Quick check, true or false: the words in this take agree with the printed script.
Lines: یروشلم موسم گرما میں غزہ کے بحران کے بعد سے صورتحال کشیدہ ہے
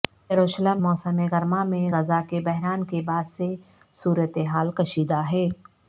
true